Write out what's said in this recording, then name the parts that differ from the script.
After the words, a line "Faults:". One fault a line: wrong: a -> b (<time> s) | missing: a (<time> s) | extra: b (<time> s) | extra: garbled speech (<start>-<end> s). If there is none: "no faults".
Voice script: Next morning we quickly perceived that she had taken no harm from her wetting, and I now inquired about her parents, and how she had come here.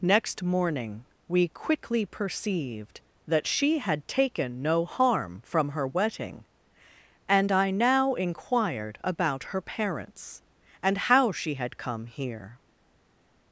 Next morning we quickly perceived that she had taken no harm from her wetting, and I now inquired about her parents, and how she had come here.
Faults:
no faults